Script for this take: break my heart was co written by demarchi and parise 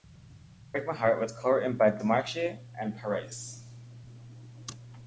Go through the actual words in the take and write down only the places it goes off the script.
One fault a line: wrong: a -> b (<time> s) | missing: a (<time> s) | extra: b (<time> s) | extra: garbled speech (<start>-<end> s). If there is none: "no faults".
no faults